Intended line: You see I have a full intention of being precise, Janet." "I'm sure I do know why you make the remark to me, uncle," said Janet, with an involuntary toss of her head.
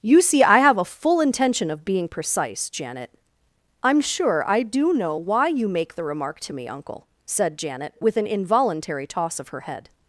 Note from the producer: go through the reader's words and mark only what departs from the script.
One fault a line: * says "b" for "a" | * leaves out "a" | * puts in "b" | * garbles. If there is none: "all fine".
all fine